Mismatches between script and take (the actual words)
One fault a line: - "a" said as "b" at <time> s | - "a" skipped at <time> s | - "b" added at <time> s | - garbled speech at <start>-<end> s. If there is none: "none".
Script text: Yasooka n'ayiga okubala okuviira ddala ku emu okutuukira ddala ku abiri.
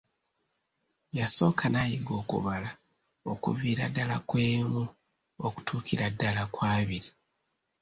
none